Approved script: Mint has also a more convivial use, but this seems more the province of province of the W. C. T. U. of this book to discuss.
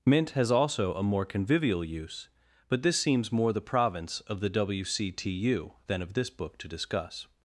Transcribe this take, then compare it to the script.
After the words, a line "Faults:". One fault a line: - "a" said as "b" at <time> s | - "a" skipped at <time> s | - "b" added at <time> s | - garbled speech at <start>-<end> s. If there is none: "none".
Mint has also a more convivial use, but this seems more the province of the W. C. T. U. than of this book to discuss.
Faults:
- "province of" skipped at 4.4 s
- "than" added at 5.9 s